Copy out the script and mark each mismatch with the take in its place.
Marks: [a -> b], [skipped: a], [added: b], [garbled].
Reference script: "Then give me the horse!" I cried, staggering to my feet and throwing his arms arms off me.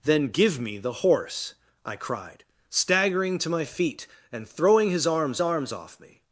"Then give me the horse!" I cried, staggering to my feet and throwing his arms arms off me.